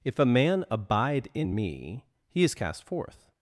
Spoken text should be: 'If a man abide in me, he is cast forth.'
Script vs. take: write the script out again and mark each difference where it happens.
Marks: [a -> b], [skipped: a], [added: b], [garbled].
'If a man abide in me, he is cast forth.'